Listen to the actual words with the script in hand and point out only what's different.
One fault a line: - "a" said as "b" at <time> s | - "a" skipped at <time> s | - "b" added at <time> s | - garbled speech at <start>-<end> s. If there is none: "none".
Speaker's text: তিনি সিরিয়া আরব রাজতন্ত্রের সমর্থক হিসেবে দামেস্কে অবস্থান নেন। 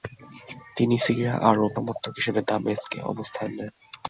- "রাজতন্ত্রের" skipped at 1.7 s